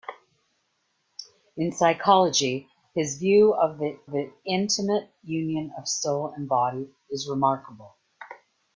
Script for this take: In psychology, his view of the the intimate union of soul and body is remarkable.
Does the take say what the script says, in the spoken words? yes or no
yes